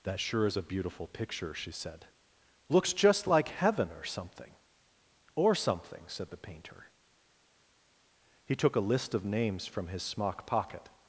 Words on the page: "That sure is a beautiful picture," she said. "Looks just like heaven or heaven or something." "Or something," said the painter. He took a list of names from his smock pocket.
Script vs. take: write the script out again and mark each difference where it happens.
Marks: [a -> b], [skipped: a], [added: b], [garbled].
"That sure is a beautiful picture," she said. "Looks just like heaven or [skipped: heaven or] something." "Or something," said the painter. He took a list of names from his smock pocket.